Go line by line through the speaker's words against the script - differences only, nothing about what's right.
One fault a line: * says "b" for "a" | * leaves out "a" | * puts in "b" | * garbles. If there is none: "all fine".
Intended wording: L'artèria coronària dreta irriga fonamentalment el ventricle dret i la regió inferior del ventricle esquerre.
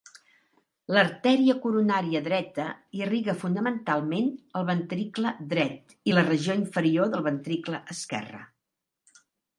all fine